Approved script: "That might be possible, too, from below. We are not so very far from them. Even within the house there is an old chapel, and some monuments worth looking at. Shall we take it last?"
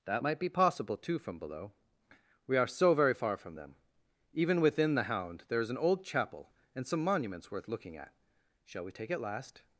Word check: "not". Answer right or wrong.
wrong